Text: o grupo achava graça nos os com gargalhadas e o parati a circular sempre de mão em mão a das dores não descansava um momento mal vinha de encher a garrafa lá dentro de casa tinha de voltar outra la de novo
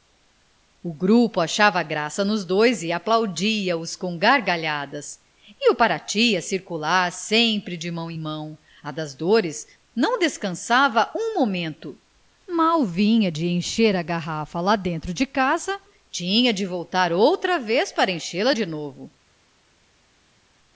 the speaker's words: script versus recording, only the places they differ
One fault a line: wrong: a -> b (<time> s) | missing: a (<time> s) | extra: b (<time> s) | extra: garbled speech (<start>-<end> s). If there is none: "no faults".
extra: dois e aplaudia (2.4 s)
extra: vez para enchê (17.6 s)